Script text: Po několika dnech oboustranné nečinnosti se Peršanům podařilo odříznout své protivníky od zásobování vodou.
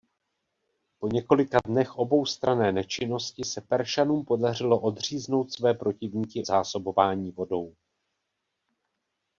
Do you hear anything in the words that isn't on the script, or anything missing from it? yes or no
yes